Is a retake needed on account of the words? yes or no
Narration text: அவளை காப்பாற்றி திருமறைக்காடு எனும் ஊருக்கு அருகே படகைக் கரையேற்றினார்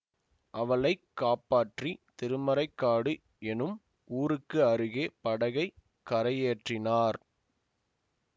no